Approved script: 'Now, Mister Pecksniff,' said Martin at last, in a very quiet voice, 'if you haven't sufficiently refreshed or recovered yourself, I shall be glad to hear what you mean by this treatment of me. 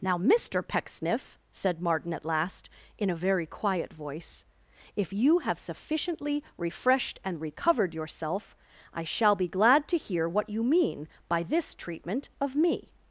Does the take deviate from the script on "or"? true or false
true